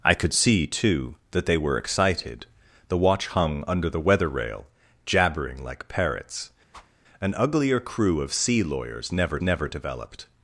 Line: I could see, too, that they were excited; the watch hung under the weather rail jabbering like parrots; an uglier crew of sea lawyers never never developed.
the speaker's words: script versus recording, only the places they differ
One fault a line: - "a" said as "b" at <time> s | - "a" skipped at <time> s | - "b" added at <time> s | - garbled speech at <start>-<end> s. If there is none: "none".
none